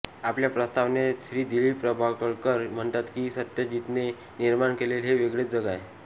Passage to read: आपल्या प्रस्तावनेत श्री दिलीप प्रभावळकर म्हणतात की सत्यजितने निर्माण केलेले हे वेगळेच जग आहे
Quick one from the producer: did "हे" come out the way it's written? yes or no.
yes